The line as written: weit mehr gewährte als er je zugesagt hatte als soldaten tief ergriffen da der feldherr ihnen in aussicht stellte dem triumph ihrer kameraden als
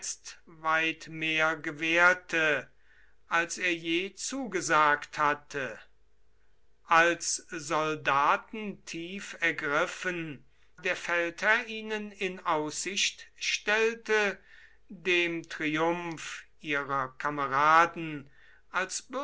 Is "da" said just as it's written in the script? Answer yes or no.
no